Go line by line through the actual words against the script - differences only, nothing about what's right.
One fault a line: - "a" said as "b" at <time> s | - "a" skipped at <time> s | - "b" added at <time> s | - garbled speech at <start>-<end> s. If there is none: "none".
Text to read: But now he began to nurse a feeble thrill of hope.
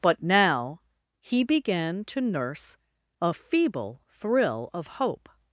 none